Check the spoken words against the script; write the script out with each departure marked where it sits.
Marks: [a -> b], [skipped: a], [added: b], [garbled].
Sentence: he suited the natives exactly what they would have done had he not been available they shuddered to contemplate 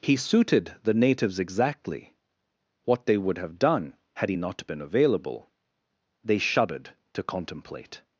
he suited the natives exactly what they would have done had he not been available they shuddered to contemplate